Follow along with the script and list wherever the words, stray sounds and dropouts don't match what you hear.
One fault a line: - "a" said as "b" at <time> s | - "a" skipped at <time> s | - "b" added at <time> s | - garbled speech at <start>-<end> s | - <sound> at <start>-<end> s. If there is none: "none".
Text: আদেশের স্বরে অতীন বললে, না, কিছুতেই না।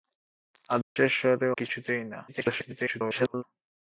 - dropout at 0.8-1.0 s
- "অতীন বললে না" skipped at 1.5 s
- garbled speech at 2.3-3.4 s